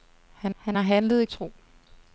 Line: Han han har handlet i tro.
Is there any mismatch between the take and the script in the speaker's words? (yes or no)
no